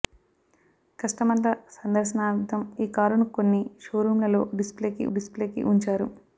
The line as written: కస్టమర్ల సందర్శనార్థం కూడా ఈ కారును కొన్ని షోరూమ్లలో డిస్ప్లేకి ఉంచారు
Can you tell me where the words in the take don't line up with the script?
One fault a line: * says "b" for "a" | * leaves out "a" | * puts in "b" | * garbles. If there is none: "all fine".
* leaves out "కూడా"
* puts in "డిస్ప్లేకి"